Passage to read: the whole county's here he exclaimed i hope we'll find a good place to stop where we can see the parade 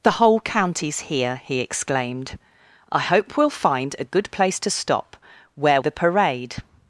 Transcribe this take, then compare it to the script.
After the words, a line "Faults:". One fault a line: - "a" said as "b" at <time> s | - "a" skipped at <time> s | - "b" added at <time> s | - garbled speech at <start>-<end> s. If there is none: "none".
the whole county's here he exclaimed i hope we'll find a good place to stop where the parade
Faults:
- "we can see" skipped at 5.8 s